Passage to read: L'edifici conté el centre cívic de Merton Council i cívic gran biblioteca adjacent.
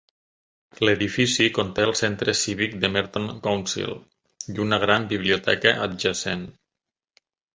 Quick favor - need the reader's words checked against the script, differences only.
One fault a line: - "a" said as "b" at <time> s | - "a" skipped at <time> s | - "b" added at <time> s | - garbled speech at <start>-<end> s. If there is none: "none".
- "cívic" said as "una" at 4.7 s